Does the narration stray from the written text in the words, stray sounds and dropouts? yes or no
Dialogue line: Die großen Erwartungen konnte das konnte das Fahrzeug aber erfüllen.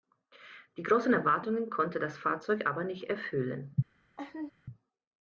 yes